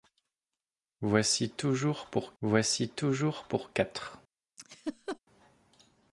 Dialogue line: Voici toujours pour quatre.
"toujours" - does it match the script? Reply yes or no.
yes